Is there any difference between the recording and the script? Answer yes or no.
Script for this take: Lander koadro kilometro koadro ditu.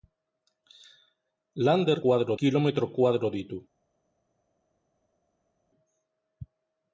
no